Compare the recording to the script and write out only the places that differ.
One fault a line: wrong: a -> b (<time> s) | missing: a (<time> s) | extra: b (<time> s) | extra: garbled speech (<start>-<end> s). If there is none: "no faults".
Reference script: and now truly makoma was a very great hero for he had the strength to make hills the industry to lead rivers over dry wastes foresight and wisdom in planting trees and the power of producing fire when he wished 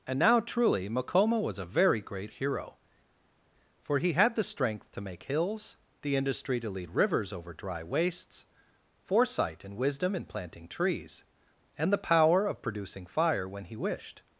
no faults